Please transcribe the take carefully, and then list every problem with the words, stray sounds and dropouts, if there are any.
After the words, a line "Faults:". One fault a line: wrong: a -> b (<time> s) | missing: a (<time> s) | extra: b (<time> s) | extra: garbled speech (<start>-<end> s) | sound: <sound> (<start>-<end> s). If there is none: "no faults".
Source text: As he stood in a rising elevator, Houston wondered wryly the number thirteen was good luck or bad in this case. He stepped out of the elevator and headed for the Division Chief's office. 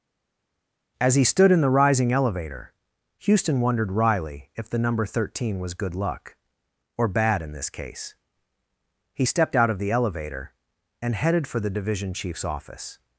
As he stood in the rising elevator, Houston wondered wryly if the number thirteen was good luck or bad in this case. He stepped out of the elevator and headed for the Division Chief's office.
Faults:
wrong: a -> the (1.6 s)
extra: if (4.5 s)